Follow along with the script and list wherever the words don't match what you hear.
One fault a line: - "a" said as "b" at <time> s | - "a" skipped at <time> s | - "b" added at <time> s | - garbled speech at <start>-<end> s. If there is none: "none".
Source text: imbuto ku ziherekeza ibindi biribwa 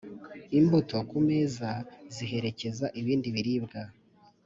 - "meza" added at 1.3 s